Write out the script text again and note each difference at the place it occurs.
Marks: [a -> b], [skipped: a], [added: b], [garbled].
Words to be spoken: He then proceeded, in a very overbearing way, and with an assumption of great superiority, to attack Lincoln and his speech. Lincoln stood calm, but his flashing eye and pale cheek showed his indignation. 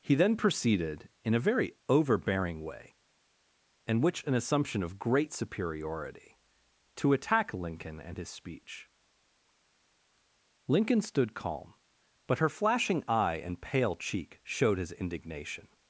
He then proceeded, in a very overbearing way, and [with -> which] an assumption of great superiority, to attack Lincoln and his speech. Lincoln stood calm, but [his -> her] flashing eye and pale cheek showed his indignation.